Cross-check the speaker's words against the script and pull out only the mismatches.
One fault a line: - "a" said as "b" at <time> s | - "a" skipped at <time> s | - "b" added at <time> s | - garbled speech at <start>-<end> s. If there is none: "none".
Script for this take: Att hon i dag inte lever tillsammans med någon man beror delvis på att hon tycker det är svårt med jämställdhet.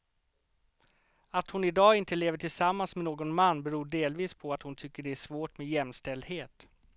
none